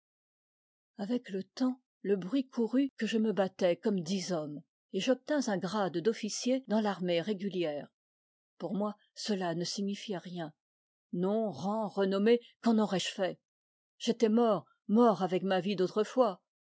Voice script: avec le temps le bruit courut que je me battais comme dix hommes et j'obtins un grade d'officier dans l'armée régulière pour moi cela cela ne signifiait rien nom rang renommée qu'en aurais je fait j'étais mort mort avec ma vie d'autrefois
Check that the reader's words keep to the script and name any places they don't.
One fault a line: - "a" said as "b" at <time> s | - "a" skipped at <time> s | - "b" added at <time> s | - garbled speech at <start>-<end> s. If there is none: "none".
- "cela" skipped at 9.5 s